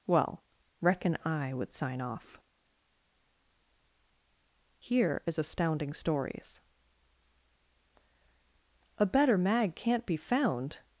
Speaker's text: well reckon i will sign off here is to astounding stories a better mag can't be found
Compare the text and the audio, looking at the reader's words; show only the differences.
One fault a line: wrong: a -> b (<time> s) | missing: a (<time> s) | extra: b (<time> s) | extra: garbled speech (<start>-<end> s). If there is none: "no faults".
wrong: will -> would (1.5 s)
missing: to (5.4 s)